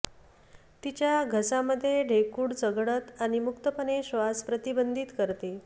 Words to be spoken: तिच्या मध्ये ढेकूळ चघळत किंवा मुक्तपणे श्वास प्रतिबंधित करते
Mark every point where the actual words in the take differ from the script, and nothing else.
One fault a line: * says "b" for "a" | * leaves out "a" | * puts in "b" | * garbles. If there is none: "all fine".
* puts in "घसा"
* says "आणि" for "किंवा"